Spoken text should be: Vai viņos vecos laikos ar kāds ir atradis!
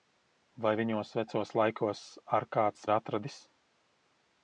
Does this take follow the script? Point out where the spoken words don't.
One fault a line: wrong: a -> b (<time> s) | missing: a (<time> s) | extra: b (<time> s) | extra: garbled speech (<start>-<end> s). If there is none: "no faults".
no faults